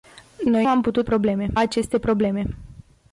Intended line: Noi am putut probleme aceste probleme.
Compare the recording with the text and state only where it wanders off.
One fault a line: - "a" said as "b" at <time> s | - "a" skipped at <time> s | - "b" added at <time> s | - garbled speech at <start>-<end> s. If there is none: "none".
none